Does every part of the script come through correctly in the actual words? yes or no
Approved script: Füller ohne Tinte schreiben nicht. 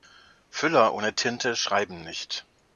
yes